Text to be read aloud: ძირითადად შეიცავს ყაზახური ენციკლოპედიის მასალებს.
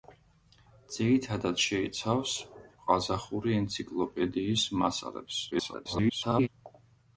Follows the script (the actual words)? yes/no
no